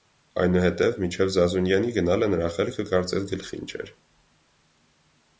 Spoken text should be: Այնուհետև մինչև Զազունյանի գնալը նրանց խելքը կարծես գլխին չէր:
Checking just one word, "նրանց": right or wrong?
wrong